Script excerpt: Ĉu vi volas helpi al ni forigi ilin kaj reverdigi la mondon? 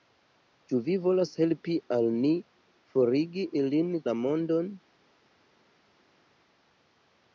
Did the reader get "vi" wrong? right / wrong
right